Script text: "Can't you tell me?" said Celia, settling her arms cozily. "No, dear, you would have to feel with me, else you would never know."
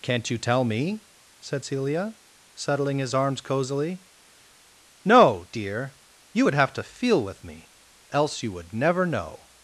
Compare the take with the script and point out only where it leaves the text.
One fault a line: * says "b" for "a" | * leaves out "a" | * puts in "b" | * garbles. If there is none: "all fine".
* says "his" for "her"